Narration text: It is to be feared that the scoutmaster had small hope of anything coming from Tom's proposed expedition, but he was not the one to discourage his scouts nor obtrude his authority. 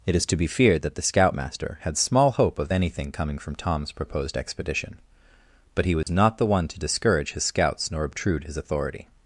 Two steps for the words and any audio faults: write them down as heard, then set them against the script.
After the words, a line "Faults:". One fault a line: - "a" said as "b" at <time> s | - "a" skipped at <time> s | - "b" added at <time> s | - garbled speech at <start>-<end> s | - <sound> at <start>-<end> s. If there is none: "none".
It is to be feared that the scoutmaster had small hope of anything coming from Tom's proposed expedition, but he was not the one to discourage his scouts nor obtrude his authority.
Faults:
- dropout at 6.0-6.1 s